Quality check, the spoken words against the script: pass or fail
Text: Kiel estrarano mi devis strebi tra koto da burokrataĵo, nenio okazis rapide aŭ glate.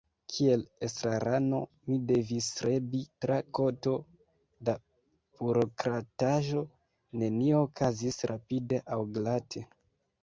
pass